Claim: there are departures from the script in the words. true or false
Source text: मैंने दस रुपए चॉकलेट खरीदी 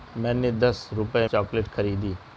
false